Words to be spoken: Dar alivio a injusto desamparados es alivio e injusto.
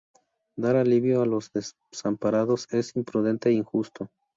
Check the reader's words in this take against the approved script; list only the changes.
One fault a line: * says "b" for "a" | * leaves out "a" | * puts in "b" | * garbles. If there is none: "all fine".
* says "los" for "injusto"
* says "imprudente" for "alivio"